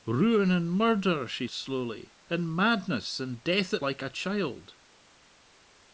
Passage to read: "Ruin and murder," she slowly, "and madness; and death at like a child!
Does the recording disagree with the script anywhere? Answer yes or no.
no